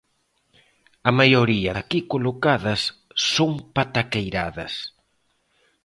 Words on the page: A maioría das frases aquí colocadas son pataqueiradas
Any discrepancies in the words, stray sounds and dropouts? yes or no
yes